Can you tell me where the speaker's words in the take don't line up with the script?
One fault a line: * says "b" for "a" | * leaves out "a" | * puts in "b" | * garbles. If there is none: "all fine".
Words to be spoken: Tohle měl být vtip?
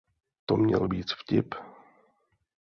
* says "To" for "Tohle"